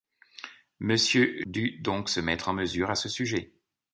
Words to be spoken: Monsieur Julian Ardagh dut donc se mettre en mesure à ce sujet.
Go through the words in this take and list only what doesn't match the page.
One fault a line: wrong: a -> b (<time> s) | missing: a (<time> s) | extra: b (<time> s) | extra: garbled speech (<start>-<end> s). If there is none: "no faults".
missing: Julian Ardagh (1.4 s)